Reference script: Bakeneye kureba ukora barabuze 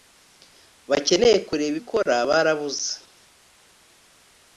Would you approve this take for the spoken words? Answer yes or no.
yes